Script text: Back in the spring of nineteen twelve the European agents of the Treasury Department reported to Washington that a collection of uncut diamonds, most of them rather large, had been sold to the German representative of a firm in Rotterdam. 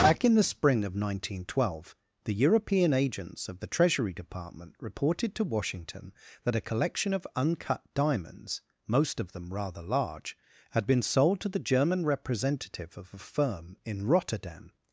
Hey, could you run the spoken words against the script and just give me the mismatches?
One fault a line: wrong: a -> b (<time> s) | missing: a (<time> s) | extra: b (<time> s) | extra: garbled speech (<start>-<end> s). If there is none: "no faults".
no faults